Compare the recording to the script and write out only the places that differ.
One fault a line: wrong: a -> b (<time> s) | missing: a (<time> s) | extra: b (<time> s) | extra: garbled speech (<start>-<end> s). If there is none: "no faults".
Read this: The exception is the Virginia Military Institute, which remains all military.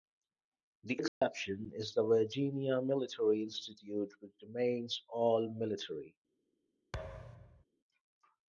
no faults